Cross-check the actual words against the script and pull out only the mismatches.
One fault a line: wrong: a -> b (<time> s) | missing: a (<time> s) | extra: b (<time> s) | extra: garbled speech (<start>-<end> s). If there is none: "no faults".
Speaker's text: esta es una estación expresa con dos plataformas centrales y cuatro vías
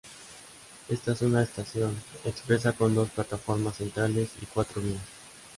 no faults